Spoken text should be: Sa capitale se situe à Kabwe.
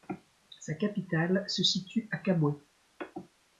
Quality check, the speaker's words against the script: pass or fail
pass